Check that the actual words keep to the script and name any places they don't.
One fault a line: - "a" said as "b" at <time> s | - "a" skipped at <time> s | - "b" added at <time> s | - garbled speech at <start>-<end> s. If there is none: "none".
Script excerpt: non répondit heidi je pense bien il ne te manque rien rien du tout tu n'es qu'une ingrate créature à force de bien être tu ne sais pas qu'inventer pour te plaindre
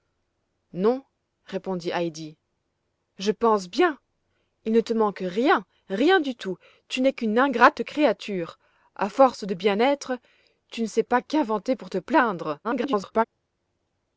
- garbled speech at 12.6-13.3 s